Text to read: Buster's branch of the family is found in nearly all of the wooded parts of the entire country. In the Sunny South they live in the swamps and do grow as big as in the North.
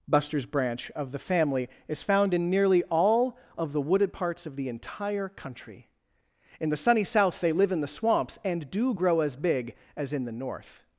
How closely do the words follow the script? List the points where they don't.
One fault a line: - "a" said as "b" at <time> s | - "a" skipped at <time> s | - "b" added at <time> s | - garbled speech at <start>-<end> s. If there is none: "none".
none